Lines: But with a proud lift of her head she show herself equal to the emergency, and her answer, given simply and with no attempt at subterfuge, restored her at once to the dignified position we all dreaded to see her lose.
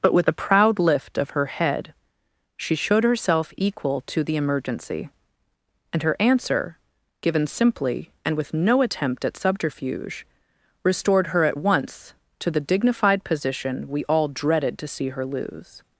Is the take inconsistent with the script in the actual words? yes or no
yes